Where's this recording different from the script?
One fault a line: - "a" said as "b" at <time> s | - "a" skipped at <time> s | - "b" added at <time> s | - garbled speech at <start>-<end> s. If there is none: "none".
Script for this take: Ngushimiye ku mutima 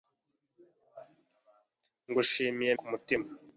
none